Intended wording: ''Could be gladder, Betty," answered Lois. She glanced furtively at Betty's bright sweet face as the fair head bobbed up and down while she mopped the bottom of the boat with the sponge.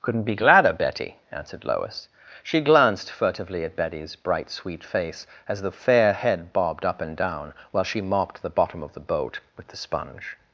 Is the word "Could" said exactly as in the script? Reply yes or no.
no